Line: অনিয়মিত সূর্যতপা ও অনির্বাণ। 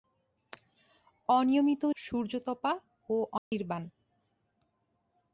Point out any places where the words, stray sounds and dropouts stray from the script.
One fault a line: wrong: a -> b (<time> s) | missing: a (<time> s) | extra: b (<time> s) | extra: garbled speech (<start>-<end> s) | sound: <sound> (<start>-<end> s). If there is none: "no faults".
sound: dropout (3.4-3.5 s)